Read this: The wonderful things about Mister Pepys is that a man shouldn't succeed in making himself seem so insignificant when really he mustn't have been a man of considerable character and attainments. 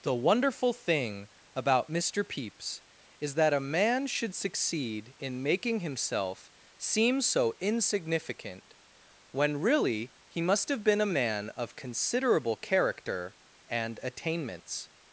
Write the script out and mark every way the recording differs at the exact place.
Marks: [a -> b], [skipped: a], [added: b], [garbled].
The wonderful [things -> thing] about Mister Pepys is that a man [shouldn't -> should] succeed in making himself seem so insignificant when really he [mustn't -> must] have been a man of considerable character and attainments.